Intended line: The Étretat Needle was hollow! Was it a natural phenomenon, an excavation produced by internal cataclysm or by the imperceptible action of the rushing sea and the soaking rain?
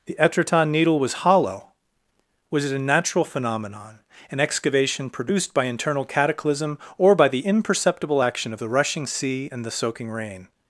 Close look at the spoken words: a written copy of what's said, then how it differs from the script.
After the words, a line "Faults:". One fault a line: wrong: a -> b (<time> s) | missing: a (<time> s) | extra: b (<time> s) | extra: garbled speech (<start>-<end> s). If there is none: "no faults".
The Étretat Needle was hollow! Was it a natural phenomenon, an excavation produced by internal cataclysm or by the imperceptible action of the rushing sea and the soaking rain?
Faults:
no faults